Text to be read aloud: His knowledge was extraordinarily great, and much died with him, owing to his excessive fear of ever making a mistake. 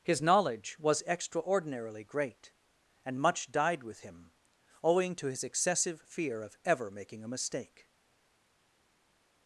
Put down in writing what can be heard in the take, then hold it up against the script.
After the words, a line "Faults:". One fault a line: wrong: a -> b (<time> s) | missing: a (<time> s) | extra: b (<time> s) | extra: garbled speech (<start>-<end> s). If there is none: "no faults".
His knowledge was extraordinarily great, and much died with him, owing to his excessive fear of ever making a mistake.
Faults:
no faults